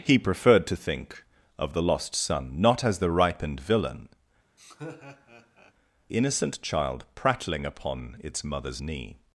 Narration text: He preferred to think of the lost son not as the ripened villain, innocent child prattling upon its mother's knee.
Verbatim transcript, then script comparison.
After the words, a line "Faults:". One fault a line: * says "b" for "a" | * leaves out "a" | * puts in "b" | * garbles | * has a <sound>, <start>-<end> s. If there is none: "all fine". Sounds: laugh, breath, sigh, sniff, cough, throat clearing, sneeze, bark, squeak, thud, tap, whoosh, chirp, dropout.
He preferred to think of the lost son not as the ripened villain, innocent child prattling upon its mother's knee.
Faults:
* has a laugh, 4.6-5.7 s